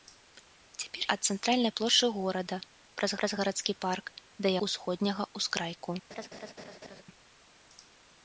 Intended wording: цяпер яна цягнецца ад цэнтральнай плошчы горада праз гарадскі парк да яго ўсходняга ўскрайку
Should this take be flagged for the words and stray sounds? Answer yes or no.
yes